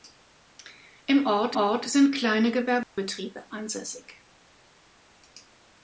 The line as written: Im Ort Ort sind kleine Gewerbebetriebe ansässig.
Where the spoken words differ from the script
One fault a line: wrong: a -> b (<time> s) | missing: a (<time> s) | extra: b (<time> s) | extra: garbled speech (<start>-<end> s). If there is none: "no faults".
no faults